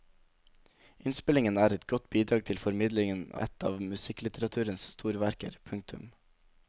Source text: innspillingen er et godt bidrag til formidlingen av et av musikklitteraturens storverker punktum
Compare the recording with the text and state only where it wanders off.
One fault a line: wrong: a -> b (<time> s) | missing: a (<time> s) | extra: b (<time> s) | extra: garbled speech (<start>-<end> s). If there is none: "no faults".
missing: av (3.3 s)